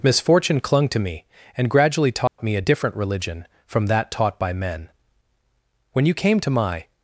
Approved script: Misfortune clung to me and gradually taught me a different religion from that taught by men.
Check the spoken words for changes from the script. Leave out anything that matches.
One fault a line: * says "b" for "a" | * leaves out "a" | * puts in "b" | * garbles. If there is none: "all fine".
* puts in "When you came to my"